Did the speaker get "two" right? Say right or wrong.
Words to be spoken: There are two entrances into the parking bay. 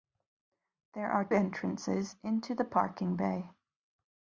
wrong